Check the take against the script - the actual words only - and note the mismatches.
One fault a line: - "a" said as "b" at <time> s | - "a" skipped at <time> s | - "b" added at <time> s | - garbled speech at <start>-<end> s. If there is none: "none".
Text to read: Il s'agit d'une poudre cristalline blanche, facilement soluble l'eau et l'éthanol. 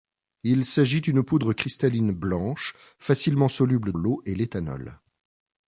none